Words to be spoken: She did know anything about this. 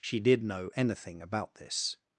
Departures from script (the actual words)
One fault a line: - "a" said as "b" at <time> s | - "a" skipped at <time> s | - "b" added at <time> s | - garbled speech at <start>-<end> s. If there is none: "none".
none